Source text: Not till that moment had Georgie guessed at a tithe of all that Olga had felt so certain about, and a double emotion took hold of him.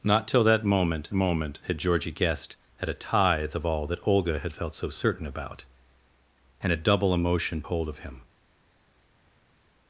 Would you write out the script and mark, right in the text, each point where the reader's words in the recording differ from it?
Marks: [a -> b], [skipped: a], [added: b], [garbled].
Not till that moment [added: moment] had Georgie guessed at a tithe of all that Olga had felt so certain about, and a double emotion [skipped: took] hold of him.